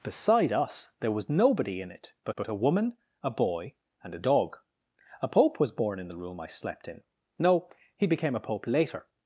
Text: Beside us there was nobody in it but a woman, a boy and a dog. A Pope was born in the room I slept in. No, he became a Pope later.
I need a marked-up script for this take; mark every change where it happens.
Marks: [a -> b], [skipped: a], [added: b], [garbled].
Beside us there was nobody in it but [added: but] a woman, a boy and a dog. A Pope was born in the room I slept in. No, he became a Pope later.